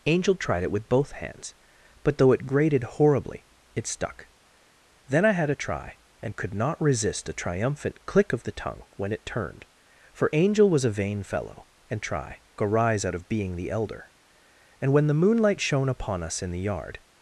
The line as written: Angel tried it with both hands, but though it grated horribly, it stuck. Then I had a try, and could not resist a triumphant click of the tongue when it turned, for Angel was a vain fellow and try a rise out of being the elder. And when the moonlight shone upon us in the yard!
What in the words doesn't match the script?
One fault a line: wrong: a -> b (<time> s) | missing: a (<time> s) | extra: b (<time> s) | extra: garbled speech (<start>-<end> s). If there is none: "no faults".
no faults